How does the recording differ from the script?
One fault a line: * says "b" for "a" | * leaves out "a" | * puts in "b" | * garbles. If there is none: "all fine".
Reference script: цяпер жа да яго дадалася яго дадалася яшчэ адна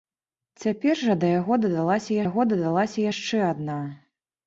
all fine